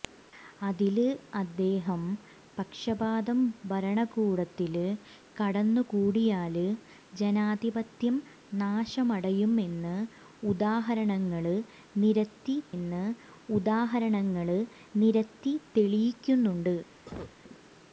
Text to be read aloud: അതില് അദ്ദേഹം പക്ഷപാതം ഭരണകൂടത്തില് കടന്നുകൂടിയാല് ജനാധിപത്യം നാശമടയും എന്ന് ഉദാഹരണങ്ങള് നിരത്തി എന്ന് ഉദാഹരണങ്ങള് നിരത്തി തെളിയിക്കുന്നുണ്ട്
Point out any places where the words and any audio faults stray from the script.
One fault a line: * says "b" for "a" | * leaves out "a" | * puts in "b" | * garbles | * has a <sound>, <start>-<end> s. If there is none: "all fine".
* has a cough, 17.1-17.4 s